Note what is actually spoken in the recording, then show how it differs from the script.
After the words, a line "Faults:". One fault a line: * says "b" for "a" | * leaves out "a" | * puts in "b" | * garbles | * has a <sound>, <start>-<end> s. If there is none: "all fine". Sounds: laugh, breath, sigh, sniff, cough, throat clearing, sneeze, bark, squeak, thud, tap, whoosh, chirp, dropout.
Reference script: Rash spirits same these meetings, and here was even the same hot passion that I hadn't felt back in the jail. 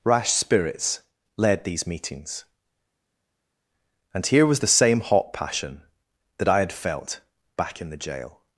Rash spirits led these meetings, and here was the same hot passion that I had felt back in the jail.
Faults:
* says "led" for "same"
* leaves out "even"
* says "had" for "hadn't"